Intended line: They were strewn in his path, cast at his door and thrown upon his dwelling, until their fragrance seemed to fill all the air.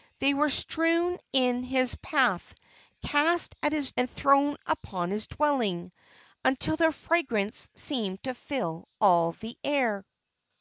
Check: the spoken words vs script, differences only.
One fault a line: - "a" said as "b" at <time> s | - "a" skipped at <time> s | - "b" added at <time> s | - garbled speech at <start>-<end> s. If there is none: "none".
- "door" skipped at 3.9 s